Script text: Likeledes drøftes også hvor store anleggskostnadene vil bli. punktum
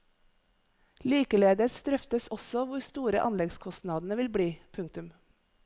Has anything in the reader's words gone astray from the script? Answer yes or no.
no